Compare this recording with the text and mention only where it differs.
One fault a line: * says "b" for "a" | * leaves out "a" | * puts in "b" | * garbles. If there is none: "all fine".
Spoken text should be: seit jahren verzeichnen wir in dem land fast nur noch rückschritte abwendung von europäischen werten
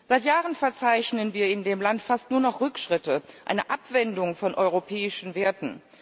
* puts in "eine"